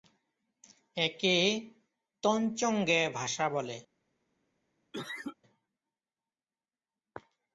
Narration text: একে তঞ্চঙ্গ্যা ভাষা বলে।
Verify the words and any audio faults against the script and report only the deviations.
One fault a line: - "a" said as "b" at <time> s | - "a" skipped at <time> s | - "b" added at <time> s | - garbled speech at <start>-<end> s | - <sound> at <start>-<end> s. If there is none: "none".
- cough at 4.9-5.4 s